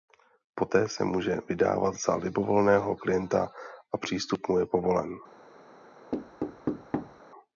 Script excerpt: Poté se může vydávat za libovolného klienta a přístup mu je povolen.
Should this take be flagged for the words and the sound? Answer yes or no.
yes